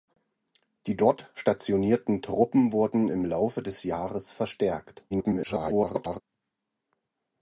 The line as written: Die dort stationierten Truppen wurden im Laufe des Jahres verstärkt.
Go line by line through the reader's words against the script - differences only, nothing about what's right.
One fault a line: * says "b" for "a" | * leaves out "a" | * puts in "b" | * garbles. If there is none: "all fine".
* garbles